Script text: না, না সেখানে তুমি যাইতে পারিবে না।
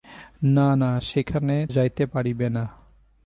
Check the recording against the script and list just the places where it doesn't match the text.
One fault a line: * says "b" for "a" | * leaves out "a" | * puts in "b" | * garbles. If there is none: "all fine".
* leaves out "তুমি"